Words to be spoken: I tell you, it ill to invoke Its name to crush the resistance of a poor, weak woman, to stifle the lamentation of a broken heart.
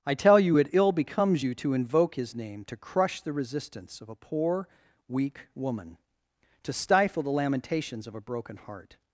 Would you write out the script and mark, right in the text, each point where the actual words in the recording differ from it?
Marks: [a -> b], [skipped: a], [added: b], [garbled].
I tell you, it ill [added: becomes you] to invoke [Its -> His] name to crush the resistance of a poor, weak woman, to stifle the [lamentation -> lamentations] of a broken heart.